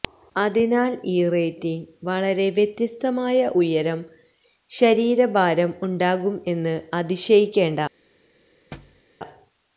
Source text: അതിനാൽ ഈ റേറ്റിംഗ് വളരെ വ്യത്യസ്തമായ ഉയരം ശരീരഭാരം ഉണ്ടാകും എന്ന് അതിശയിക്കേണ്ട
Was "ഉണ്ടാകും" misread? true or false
false